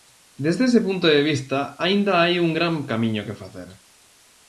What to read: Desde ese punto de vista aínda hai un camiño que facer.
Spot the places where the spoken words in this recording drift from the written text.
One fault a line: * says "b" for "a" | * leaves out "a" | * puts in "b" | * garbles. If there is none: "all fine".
* puts in "gran"